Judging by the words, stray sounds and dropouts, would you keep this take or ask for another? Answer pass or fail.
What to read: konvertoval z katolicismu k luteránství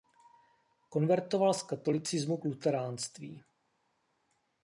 pass